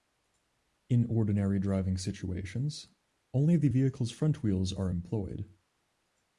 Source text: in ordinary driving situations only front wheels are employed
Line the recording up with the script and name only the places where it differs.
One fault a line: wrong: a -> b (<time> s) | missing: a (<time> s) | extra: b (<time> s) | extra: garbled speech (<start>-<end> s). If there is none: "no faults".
extra: the vehicle's (3.5 s)